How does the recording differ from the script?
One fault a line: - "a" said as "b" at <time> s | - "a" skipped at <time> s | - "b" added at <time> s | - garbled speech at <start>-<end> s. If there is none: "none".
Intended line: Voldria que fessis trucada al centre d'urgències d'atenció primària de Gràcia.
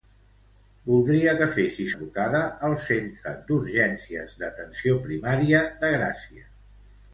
none